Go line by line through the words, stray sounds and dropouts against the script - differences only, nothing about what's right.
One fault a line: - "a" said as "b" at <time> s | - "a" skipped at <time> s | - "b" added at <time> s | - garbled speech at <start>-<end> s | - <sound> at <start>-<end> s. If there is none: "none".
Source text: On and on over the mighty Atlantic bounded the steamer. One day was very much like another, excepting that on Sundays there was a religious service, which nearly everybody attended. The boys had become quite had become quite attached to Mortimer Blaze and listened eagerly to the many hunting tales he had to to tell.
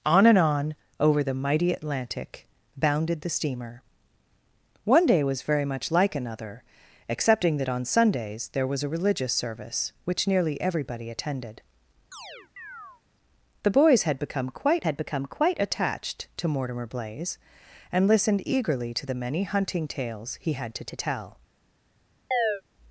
- chirp at 12.1-13.0 s
- chirp at 22.3-22.6 s